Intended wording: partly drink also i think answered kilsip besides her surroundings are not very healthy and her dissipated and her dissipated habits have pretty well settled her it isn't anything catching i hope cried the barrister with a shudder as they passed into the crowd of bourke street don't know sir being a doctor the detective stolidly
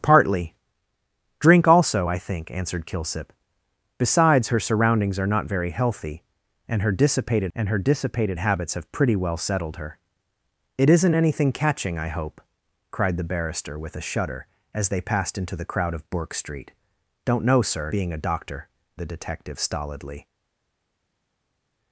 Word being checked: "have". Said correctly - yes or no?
yes